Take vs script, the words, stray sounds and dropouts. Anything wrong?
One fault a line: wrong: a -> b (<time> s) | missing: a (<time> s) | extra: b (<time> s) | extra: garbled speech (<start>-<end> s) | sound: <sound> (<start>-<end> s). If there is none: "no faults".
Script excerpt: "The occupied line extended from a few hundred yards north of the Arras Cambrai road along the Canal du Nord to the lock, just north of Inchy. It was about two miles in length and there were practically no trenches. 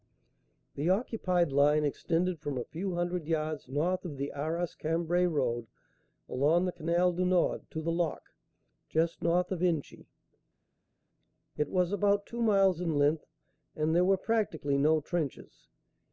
no faults